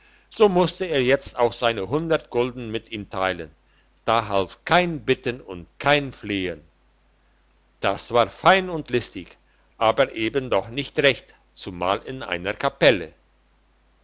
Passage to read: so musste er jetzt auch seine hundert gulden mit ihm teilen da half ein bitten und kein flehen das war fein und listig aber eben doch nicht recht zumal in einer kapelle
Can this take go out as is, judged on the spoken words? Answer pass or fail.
fail